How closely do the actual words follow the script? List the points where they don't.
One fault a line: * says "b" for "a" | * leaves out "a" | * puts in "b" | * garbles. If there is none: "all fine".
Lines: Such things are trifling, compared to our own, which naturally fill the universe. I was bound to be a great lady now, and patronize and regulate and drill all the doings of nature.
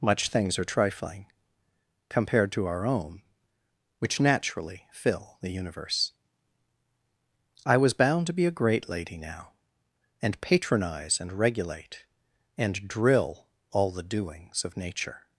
* says "Much" for "Such"